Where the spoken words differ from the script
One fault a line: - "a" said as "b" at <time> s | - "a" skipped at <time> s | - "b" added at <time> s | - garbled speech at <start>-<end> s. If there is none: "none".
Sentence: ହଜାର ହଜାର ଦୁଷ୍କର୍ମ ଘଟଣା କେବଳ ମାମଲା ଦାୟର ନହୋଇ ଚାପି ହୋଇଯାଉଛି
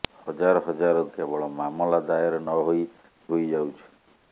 - "ଦୁଷ୍କର୍ମ ଘଟଣା" skipped at 1.0 s
- "ଚାପି" skipped at 2.9 s